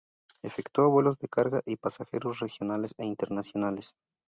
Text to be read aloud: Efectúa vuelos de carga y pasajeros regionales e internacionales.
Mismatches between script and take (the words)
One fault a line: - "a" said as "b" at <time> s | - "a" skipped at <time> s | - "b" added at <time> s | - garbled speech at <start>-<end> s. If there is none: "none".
none